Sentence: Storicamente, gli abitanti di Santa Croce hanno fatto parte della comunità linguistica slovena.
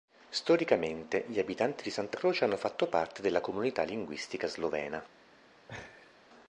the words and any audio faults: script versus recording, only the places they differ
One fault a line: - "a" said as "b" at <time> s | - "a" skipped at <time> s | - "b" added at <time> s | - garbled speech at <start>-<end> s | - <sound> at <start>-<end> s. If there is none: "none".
- laugh at 5.7-6.2 s